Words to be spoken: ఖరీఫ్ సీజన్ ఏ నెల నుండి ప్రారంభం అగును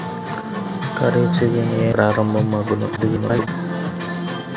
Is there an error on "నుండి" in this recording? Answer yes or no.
yes